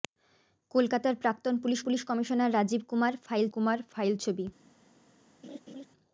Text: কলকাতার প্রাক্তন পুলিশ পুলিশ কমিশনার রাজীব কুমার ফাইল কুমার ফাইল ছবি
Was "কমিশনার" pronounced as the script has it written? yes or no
yes